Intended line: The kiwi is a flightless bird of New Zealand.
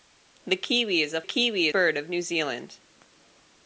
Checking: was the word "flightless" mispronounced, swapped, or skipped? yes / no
yes